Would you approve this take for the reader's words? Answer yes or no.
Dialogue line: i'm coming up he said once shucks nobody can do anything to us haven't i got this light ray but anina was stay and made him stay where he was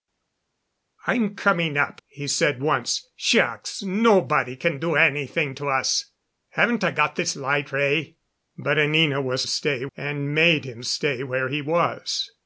yes